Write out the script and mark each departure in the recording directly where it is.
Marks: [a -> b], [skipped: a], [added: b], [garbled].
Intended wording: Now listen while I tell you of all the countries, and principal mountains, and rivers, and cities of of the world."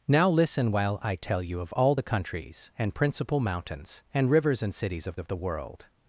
Now listen while I tell you of all the countries, and principal mountains, and rivers, and cities of of the world."